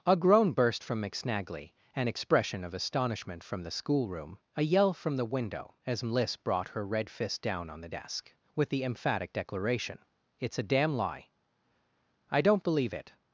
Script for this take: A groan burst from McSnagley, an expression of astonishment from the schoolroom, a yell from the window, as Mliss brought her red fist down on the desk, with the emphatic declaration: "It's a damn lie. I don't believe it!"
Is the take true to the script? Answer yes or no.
yes